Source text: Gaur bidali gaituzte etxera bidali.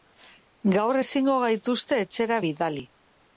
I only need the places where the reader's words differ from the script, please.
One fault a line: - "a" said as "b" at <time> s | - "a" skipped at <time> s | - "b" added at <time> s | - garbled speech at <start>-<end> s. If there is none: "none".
- "bidali" said as "ezingo" at 1.0 s